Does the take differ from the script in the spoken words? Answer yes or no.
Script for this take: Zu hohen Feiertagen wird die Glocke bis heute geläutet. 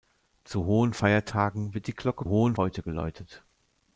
yes